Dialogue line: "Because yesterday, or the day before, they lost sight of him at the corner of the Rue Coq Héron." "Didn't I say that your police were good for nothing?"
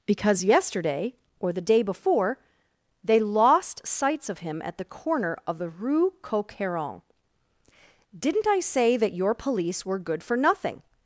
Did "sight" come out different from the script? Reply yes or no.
yes